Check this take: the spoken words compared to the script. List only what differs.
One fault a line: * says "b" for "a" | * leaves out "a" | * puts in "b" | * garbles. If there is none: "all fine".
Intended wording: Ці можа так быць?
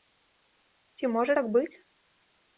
all fine